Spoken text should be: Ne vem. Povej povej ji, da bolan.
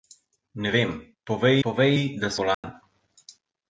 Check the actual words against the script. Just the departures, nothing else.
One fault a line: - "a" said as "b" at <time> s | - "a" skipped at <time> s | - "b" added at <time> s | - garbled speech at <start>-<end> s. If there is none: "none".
none